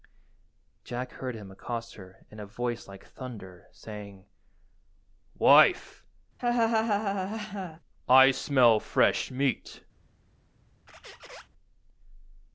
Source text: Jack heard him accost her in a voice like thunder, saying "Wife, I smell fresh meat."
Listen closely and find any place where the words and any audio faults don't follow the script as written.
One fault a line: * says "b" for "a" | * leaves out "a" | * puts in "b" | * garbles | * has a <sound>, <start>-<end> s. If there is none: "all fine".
* has a laugh, 6.4-7.8 s
* has a squeak, 10.9-11.5 s